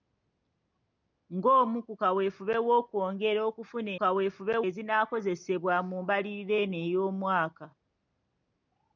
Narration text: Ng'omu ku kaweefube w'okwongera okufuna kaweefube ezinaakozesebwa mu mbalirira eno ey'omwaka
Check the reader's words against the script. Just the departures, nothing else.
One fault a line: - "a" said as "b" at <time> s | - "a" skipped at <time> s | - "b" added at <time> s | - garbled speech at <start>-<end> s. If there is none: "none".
none